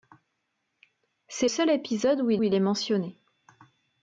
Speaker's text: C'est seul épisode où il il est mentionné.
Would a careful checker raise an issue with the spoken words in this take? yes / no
no